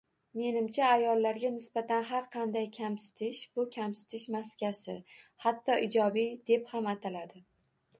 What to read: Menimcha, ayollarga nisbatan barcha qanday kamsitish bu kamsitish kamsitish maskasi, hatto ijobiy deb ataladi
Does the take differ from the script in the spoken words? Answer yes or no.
yes